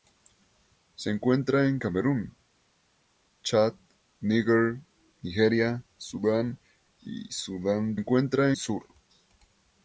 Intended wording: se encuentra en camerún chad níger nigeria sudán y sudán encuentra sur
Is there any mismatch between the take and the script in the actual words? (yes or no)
no